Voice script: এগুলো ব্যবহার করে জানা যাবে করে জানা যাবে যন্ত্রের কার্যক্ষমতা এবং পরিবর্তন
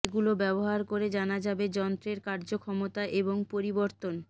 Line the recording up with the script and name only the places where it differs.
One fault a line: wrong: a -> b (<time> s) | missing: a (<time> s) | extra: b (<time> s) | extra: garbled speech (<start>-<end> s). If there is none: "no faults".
missing: করে জানা যাবে (1.6 s)